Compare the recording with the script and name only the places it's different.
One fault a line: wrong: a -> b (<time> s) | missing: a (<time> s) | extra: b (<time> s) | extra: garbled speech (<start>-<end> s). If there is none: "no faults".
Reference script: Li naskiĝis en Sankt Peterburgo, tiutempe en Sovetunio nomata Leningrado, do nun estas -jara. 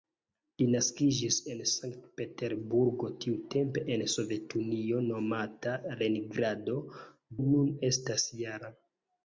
missing: do (6.8 s)